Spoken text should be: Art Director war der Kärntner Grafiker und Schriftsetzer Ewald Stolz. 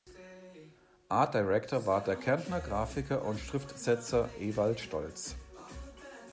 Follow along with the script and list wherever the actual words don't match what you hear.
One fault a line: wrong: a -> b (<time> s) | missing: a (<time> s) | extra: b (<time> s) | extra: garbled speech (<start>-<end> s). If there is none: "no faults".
no faults